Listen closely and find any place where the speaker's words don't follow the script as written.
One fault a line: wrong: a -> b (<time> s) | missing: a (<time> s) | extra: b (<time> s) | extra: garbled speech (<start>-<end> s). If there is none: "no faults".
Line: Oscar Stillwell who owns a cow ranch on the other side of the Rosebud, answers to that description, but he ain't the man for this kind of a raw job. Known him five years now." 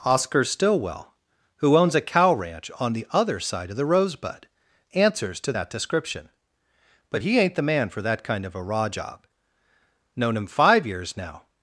wrong: this -> that (8.0 s)